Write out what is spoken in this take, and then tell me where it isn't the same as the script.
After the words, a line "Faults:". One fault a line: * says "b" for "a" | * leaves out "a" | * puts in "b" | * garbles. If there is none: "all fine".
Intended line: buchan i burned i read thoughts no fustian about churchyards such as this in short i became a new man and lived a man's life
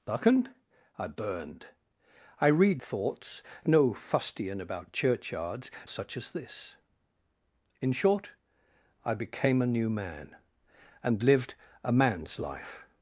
buchan i burned i read thoughts no fustian about churchyards such as this in short i became a new man and lived a man's life
Faults:
all fine